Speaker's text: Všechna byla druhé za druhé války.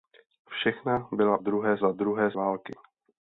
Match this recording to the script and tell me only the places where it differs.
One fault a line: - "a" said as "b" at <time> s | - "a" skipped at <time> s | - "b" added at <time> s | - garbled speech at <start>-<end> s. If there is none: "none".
none